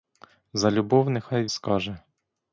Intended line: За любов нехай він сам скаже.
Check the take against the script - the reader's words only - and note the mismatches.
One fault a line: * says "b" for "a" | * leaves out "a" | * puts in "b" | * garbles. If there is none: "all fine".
* leaves out "він сам"